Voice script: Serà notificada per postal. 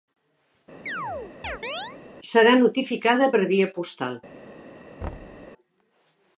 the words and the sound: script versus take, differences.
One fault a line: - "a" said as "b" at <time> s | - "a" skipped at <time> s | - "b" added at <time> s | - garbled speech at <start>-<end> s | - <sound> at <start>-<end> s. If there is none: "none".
- chirp at 0.9-2.0 s
- "via" added at 3.5 s
- thud at 5.0-5.5 s